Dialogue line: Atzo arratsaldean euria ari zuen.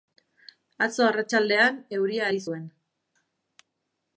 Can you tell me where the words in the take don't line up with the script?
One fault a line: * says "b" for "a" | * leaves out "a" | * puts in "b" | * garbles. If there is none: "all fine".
all fine